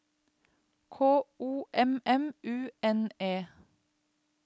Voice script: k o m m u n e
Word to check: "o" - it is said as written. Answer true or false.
true